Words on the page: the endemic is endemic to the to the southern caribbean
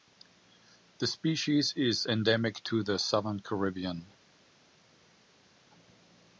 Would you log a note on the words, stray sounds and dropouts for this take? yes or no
yes